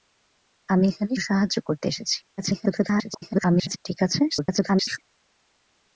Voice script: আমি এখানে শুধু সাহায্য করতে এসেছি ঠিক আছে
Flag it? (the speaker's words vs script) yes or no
yes